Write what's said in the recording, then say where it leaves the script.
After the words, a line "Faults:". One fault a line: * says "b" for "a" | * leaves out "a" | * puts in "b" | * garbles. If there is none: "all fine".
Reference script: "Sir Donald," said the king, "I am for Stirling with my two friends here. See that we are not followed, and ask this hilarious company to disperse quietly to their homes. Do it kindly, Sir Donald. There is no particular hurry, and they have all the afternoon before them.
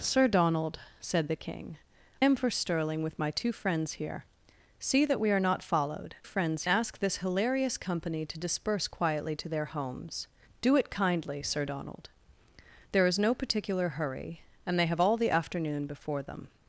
"Sir Donald," said the king, "am for Stirling with my two friends here. See that we are not followed, friends ask this hilarious company to disperse quietly to their homes. Do it kindly, Sir Donald. There is no particular hurry, and they have all the afternoon before them.
Faults:
* leaves out "I"
* says "friends" for "and"